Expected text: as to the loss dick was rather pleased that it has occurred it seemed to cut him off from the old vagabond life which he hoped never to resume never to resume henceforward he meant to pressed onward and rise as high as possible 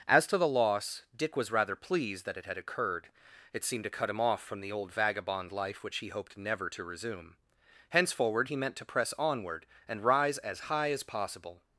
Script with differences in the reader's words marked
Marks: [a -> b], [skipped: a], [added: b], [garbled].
as to the loss dick was rather pleased that it [has -> had] occurred it seemed to cut him off from the old vagabond life which he hoped never to resume [skipped: never to resume] henceforward he meant to [pressed -> press] onward and rise as high as possible